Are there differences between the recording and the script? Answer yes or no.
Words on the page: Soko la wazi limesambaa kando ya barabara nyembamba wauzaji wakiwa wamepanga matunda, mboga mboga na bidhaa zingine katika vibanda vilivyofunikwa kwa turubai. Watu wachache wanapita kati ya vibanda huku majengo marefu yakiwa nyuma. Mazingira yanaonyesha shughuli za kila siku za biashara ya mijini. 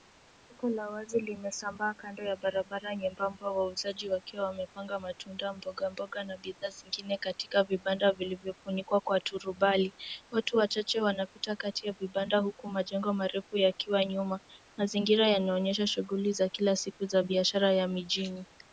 no